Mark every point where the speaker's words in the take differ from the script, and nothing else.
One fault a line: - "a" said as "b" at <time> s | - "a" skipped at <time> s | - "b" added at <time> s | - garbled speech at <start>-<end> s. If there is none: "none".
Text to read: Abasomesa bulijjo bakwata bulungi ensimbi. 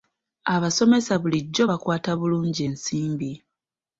none